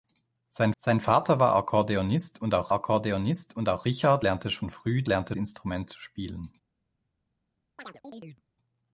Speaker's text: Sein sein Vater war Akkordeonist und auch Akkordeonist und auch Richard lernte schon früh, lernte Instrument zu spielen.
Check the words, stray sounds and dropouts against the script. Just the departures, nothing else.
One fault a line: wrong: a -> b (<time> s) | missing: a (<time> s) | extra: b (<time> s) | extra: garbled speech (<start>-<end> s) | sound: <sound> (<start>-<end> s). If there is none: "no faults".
sound: chirp (7.8-8.4 s)